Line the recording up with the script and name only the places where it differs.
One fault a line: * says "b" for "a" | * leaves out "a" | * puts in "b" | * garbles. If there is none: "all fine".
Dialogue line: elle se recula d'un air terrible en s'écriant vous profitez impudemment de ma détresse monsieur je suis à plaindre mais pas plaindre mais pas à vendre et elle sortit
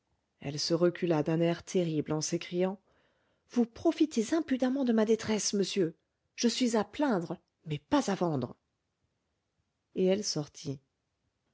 * leaves out "plaindre mais pas"